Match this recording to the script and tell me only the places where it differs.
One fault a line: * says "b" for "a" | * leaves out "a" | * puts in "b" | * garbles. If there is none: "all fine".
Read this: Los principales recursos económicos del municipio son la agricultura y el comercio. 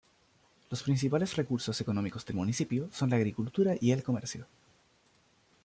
all fine